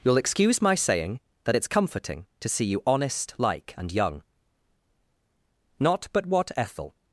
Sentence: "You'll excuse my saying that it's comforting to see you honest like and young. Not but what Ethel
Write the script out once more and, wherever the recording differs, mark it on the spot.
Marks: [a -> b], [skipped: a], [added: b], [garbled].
"You'll excuse my saying that it's comforting to see you honest like and young. Not but what Ethel